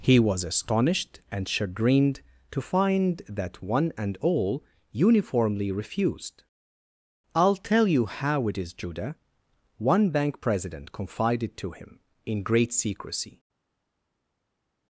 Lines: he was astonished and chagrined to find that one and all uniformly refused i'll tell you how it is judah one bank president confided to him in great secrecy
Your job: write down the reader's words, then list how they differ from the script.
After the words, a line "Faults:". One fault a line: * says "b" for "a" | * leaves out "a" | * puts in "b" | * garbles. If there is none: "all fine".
he was astonished and chagrined to find that one and all uniformly refused i'll tell you how it is judah one bank president confided to him in great secrecy
Faults:
all fine